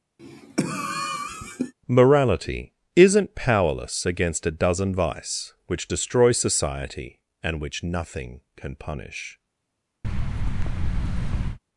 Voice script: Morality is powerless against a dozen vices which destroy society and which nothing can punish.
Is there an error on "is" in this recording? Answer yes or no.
yes